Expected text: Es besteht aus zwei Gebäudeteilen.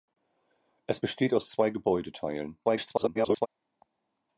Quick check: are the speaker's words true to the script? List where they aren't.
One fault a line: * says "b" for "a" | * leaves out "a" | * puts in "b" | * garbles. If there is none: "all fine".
* garbles